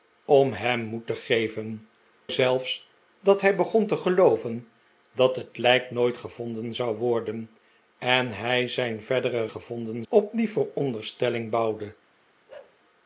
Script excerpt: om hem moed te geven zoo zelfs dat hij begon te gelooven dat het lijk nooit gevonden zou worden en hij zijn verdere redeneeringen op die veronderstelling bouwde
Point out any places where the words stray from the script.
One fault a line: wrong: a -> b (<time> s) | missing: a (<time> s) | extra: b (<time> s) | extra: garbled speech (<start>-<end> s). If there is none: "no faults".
missing: zoo (1.8 s)
wrong: redeneeringen -> gevonden (9.5 s)